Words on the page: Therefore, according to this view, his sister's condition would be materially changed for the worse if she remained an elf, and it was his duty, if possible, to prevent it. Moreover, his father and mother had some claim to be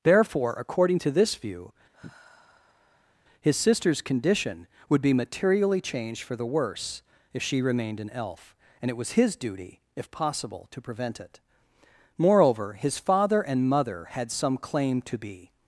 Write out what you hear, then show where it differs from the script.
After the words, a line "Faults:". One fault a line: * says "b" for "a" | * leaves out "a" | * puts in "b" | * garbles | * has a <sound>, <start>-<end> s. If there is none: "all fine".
Therefore, according to this view, his sister's condition would be materially changed for the worse if she remained an elf, and it was his duty, if possible, to prevent it. Moreover, his father and mother had some claim to be
Faults:
* has a sigh, 1.9-3.2 s